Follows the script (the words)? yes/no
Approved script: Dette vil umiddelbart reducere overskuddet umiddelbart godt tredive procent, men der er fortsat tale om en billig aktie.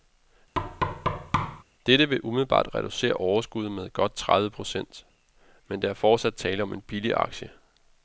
no